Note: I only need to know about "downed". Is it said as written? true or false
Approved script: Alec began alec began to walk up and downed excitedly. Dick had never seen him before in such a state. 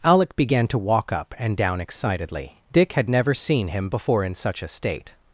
false